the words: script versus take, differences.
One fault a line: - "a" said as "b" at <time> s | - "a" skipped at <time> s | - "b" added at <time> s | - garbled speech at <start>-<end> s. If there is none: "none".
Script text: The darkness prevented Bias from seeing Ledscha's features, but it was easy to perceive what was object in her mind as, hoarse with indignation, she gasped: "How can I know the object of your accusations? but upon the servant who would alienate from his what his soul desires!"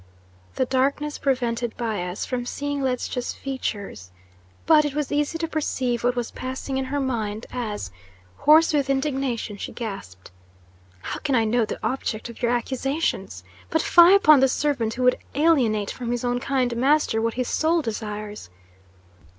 - "object" said as "passing" at 6.3 s
- "fie" added at 13.8 s
- "own kind master" added at 16.2 s